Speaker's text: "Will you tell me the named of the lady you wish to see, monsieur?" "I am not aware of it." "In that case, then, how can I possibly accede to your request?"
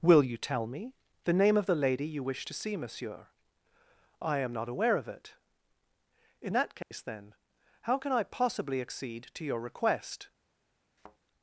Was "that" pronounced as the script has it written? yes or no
yes